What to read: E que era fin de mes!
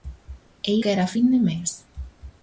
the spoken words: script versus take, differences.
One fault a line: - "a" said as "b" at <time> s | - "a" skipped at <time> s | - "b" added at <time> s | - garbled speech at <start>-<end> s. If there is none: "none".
none